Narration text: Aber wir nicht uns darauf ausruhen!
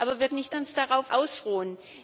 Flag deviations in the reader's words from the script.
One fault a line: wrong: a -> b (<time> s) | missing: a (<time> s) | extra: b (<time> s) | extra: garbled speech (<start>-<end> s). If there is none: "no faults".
no faults